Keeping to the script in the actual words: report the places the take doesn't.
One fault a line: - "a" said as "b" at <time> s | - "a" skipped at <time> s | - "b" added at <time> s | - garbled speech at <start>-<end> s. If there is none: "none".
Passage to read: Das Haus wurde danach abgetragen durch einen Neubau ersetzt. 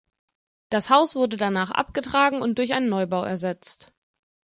- "und" added at 2.4 s